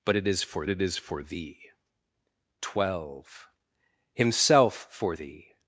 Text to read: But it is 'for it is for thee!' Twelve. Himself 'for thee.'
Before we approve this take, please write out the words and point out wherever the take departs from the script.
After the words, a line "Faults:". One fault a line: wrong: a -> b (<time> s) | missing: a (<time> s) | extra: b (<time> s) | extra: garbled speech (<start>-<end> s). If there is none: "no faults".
But it is 'for it is for thee!' Twelve. Himself 'for thee.'
Faults:
no faults